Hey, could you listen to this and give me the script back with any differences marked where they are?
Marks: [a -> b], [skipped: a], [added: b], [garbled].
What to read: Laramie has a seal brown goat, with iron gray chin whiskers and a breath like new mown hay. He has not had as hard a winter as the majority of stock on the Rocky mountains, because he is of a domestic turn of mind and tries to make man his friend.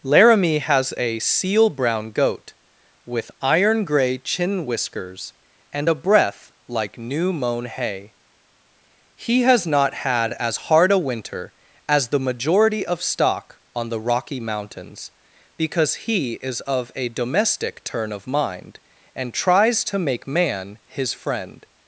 Laramie has a seal brown goat, with iron gray chin whiskers and a breath like new mown hay. He has not had as hard a winter as the majority of stock on the Rocky mountains, because he is of a domestic turn of mind and tries to make man his friend.